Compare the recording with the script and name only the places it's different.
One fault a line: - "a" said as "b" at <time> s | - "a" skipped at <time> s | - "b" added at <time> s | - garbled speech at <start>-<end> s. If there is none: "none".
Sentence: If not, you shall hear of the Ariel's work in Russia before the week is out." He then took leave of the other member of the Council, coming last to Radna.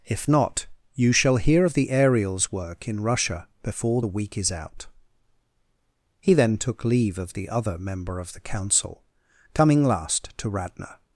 none